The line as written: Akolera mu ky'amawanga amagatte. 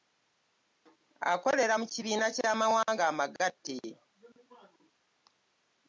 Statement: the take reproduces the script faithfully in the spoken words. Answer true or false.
false